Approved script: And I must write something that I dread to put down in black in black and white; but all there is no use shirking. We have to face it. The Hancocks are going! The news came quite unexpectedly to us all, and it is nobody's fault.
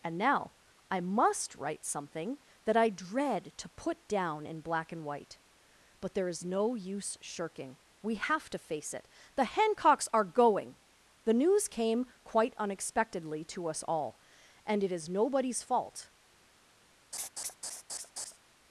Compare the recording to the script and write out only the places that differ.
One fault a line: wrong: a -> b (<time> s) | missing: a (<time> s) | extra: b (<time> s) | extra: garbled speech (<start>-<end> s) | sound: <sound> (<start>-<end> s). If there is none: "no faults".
extra: now (0.2 s)
missing: in black (4.9 s)
missing: all (6.1 s)
sound: laugh (17.1-18.4 s)